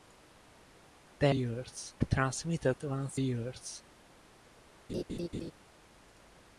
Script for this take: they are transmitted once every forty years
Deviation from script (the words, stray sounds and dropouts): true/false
true